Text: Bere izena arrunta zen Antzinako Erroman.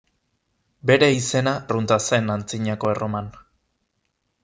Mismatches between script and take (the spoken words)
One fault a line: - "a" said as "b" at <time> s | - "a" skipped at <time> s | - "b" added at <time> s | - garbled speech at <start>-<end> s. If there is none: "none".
none